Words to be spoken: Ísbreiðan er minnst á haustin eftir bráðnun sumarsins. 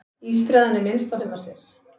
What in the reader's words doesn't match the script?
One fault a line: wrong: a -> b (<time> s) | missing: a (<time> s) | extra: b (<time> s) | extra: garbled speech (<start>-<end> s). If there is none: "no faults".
missing: haustin eftir bráðnun (1.2 s)